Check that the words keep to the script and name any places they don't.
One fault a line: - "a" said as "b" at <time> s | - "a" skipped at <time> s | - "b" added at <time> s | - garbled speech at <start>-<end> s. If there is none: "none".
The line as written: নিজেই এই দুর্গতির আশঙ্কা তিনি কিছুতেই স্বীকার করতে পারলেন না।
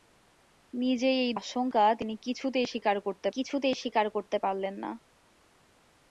- "দুর্গতির" skipped at 1.3 s
- "কিছুতেই স্বীকার করতে" added at 3.3 s